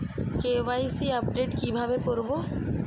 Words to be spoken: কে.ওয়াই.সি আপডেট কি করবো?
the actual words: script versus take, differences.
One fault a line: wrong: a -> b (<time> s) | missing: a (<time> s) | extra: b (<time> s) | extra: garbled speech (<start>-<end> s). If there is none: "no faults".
extra: ভাবে (1.8 s)